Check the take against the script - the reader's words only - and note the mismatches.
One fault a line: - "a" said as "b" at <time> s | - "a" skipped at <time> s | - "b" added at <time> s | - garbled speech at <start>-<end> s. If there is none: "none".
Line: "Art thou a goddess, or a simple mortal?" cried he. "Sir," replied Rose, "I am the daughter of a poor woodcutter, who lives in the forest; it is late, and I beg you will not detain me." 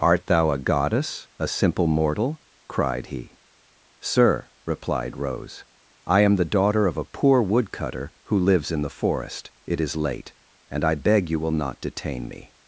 - "or" skipped at 1.3 s